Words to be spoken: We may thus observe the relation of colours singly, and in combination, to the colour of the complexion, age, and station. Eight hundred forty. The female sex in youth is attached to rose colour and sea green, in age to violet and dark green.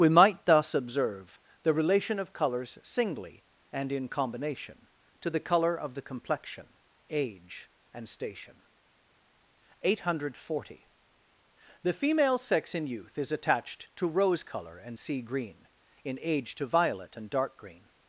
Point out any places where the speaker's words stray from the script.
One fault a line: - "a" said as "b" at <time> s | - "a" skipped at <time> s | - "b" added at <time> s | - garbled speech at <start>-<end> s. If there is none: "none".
- "may" said as "might" at 0.1 s